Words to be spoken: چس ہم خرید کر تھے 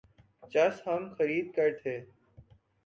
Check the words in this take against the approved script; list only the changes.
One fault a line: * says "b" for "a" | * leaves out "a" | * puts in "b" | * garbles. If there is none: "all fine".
all fine